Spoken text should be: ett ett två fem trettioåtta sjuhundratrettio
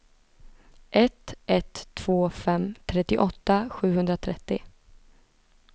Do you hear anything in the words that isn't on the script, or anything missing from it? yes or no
no